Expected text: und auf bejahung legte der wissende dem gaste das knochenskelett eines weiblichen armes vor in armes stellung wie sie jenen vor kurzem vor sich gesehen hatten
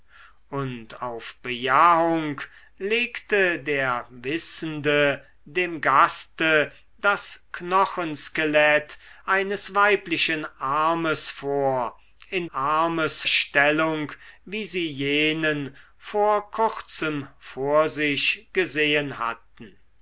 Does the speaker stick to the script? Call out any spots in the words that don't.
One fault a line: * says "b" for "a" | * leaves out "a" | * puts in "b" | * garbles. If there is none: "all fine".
all fine